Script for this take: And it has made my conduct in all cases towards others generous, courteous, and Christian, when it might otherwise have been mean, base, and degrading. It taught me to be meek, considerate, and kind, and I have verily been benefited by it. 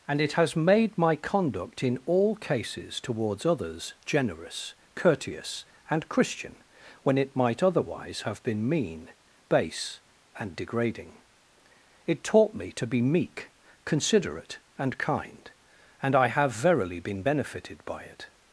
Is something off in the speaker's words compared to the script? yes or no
no